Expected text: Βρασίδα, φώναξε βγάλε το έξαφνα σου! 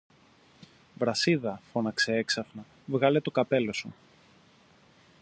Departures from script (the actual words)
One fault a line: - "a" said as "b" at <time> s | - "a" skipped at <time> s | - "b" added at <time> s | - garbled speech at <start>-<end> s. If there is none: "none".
- "έξαφνα" added at 2.1 s
- "έξαφνα" said as "καπέλο" at 3.3 s